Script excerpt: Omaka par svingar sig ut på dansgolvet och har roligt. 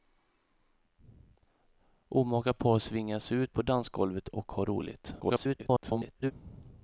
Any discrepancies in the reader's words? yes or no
yes